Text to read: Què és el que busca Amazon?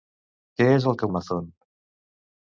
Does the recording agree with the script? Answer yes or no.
no